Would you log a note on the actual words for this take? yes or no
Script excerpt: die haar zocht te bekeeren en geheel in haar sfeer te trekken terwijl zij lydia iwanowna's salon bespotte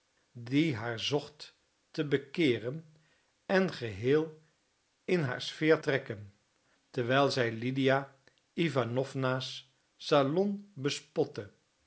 yes